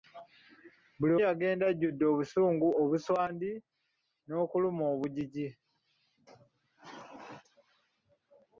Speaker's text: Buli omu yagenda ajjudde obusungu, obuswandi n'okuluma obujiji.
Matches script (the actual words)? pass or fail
fail